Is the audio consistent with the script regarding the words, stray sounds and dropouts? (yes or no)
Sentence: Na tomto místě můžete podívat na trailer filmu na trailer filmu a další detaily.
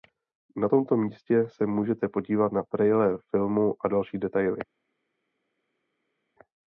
no